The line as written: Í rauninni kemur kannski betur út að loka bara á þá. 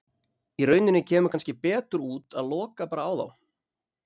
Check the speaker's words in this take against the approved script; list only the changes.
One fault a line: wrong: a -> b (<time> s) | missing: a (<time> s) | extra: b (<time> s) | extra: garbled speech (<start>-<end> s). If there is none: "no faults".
no faults